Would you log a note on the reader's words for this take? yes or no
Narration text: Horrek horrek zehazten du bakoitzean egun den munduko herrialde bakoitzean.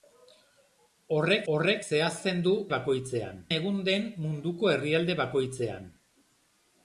no